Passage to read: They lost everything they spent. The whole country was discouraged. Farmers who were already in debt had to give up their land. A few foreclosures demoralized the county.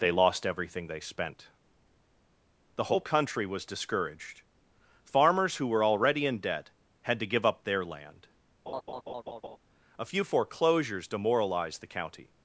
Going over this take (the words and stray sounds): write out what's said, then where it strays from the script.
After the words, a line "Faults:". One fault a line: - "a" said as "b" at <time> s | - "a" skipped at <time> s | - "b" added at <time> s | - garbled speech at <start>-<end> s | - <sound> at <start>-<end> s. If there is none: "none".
They lost everything they spent. The whole country was discouraged. Farmers who were already in debt had to give up their land. A few foreclosures demoralized the county.
Faults:
- laugh at 8.7-9.6 s